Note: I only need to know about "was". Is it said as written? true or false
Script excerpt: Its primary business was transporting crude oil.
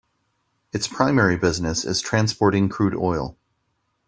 false